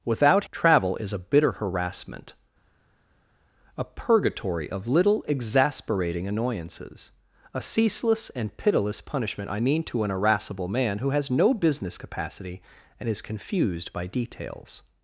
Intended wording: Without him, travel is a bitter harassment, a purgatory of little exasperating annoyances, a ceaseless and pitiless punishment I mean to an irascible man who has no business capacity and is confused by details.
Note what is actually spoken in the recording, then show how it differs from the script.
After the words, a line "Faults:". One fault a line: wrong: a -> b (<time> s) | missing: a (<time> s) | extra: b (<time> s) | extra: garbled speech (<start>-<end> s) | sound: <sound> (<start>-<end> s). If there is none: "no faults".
Without travel is a bitter harassment, a purgatory of little exasperating annoyances, a ceaseless and pitiless punishment I mean to an irascible man who has no business capacity and is confused by details.
Faults:
missing: him (0.5 s)